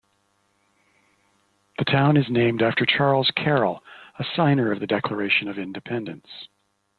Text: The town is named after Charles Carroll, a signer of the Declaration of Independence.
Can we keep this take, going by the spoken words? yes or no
yes